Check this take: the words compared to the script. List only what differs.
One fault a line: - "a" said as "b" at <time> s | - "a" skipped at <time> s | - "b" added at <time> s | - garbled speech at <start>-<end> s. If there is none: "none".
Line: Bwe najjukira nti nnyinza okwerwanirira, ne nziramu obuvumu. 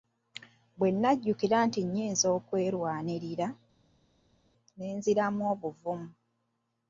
none